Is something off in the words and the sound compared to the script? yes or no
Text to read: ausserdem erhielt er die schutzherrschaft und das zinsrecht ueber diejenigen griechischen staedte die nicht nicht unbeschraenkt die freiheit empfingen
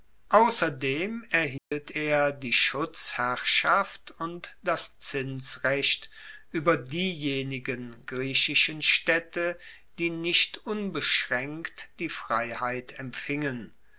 yes